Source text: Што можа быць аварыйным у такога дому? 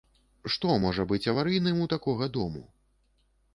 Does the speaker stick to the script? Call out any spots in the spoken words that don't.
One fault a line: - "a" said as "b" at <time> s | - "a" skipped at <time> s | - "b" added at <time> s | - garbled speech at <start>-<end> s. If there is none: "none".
none